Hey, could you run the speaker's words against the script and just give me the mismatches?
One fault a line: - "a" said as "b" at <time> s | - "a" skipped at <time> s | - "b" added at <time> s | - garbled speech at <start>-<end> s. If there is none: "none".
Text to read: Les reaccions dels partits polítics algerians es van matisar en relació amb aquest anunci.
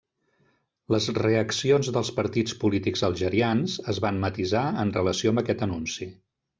none